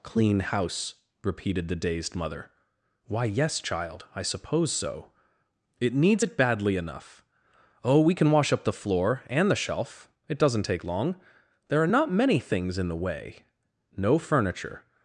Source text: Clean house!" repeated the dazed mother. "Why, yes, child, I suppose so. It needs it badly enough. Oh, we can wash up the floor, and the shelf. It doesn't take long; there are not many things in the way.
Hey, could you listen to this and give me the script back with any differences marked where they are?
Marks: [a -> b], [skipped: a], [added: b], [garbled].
Clean house!" repeated the dazed mother. "Why, yes, child, I suppose so. It needs it badly enough. Oh, we can wash up the floor, and the shelf. It doesn't take long; there are not many things in the way. [added: No furniture]